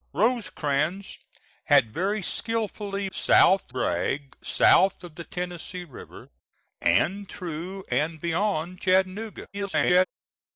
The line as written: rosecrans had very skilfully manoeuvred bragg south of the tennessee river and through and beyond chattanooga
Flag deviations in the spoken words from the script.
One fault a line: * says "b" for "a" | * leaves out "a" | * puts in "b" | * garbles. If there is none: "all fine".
* says "south" for "manoeuvred"
* garbles